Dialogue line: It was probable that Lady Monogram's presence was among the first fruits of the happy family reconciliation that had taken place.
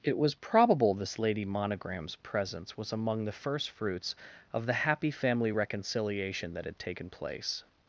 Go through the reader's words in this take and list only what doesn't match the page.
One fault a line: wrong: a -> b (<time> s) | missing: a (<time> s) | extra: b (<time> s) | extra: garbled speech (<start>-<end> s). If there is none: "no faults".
wrong: that -> this (0.9 s)